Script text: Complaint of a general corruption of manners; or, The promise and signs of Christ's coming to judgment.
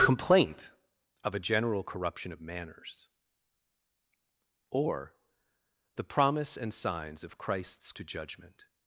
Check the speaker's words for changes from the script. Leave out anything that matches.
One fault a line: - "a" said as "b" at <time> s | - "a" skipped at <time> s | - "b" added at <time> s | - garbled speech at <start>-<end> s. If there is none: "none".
- "coming" skipped at 7.9 s